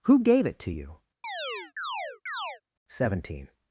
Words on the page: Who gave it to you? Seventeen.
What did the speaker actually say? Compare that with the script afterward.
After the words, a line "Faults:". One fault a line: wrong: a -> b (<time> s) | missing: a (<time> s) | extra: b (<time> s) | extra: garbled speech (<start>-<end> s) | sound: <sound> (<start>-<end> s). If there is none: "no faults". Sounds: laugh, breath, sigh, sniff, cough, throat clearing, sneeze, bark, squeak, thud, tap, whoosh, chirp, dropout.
Who gave it to you? Seventeen.
Faults:
sound: chirp (1.2-2.6 s)